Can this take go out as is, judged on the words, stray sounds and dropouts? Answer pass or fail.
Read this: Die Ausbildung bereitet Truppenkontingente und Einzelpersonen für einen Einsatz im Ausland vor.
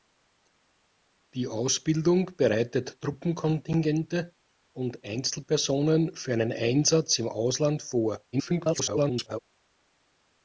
fail